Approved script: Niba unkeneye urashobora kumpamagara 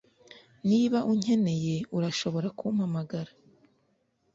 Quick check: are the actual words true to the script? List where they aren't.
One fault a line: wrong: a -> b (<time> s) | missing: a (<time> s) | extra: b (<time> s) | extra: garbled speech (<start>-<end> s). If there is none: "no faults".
no faults